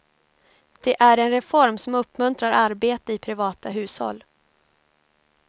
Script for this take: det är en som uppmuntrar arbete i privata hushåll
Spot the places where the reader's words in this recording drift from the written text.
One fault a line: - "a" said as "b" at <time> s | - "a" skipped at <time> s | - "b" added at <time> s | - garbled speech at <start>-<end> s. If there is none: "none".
- "reform" added at 1.3 s